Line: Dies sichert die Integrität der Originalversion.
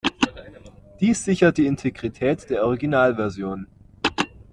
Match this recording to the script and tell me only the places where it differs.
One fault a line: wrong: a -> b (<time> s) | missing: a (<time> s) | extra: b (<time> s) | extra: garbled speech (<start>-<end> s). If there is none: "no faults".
no faults